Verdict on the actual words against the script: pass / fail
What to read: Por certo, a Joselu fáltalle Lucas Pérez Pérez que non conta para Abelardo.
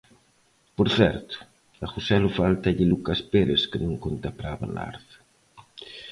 fail